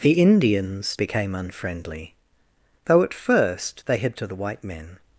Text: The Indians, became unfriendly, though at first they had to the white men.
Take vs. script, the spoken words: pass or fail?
pass